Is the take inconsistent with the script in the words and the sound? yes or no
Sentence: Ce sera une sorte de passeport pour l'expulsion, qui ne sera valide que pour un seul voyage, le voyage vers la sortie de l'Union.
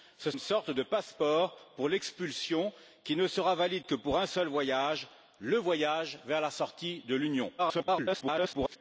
yes